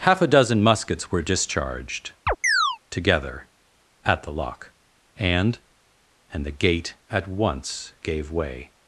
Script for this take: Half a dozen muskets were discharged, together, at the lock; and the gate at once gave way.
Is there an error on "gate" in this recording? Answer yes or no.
no